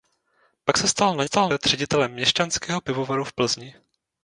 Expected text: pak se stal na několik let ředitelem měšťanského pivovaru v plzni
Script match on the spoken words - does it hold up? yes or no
no